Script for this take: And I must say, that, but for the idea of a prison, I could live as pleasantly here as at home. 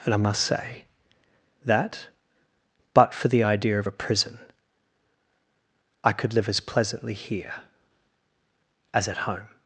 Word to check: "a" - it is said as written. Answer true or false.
true